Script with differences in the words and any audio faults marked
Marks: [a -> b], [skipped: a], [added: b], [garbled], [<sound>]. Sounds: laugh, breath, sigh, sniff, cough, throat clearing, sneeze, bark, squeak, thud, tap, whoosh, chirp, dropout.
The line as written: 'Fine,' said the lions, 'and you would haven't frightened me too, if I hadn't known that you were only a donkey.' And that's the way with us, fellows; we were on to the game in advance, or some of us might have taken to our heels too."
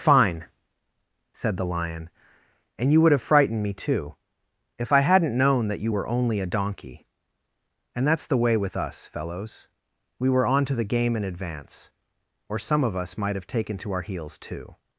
'Fine,' said the [lions, -> lion] 'and you would [haven't -> have] frightened me too, if I hadn't known that you were only a donkey.' And that's the way with us, fellows; we were on to the game in advance, or some of us might have taken to our heels too."